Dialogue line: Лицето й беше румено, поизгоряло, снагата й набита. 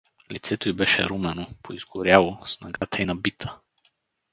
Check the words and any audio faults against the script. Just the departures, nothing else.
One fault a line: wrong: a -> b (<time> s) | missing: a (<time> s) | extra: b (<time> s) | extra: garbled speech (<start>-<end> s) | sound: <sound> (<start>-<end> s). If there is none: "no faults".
sound: dropout (2.8-2.8 s)